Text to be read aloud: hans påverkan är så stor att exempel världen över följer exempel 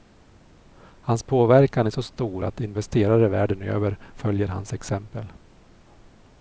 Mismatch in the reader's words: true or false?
true